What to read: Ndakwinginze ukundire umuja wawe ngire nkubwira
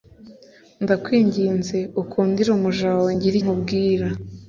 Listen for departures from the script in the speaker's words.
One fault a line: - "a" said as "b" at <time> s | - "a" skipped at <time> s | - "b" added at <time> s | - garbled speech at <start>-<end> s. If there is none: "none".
none